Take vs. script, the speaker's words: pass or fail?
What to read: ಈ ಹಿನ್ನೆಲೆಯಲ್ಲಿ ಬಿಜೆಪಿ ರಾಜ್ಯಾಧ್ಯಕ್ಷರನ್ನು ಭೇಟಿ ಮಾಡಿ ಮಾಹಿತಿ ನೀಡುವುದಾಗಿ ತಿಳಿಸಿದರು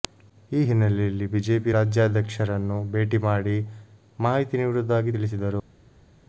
pass